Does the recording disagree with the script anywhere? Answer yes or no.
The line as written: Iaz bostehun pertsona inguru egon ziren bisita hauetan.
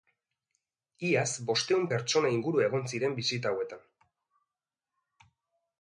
no